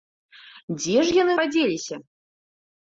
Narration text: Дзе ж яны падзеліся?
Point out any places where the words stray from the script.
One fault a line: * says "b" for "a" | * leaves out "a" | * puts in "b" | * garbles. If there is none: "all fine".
all fine